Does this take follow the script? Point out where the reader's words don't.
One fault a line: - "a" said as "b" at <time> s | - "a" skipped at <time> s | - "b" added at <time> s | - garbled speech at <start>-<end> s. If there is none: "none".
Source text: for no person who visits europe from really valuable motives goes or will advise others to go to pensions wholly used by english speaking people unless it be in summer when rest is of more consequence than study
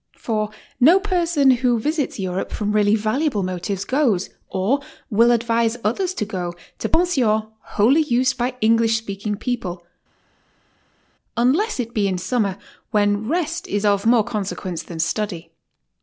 none